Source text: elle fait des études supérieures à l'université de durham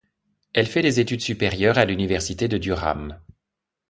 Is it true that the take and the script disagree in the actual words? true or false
false